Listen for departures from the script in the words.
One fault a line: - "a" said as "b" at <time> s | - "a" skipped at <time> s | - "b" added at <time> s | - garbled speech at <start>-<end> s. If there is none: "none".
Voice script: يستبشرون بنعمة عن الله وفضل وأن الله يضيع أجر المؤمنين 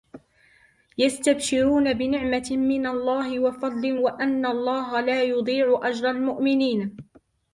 - "عن" said as "من" at 2.5 s
- "لا" added at 5.0 s